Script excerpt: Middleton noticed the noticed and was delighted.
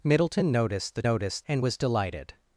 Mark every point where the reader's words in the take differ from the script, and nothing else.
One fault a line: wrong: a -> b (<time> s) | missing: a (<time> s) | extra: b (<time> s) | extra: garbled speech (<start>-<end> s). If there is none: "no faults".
no faults